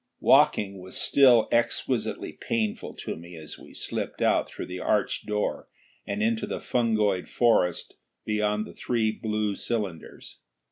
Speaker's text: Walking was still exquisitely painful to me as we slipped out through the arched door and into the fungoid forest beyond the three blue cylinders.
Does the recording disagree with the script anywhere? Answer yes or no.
no